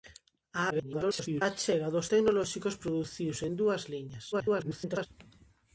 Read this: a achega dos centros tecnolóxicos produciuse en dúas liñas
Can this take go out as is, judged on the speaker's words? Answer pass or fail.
fail